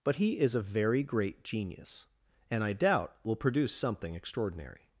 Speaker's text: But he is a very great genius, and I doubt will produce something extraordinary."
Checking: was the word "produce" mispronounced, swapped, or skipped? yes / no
no